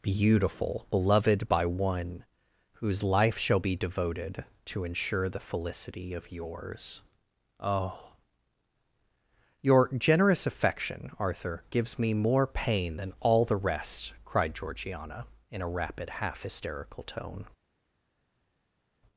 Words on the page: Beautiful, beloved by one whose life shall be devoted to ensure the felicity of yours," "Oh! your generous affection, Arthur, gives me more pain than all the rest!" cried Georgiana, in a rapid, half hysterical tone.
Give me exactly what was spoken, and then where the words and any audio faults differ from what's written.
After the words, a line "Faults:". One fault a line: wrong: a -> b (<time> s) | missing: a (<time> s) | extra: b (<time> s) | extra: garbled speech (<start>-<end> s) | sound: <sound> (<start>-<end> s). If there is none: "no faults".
Beautiful, beloved by one whose life shall be devoted to ensure the felicity of yours," "Oh! your generous affection, Arthur, gives me more pain than all the rest!" cried Georgiana, in a rapid, half hysterical tone.
Faults:
no faults